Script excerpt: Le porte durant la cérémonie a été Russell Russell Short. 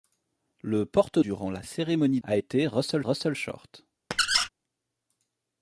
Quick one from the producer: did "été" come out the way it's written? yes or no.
yes